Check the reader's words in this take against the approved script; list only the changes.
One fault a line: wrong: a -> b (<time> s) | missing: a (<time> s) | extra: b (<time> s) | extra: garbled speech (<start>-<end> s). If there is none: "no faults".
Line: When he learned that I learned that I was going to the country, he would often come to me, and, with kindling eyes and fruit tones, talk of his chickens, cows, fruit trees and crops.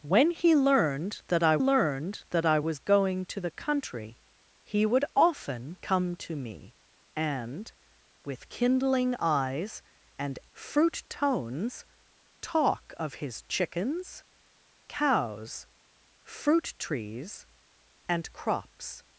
no faults